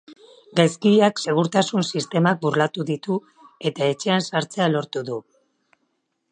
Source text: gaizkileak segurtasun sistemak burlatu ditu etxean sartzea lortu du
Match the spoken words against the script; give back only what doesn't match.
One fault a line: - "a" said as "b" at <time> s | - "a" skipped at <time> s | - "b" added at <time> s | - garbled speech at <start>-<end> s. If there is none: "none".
- "eta" added at 3.7 s